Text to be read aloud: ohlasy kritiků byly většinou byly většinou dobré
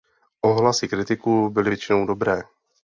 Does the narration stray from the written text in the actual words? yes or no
yes